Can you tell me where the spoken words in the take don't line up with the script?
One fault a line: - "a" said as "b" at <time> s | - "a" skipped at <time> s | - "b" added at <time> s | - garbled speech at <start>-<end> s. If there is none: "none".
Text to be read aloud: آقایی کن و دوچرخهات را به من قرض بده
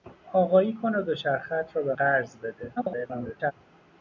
- "من" skipped at 1.9 s
- garbled speech at 2.8-3.5 s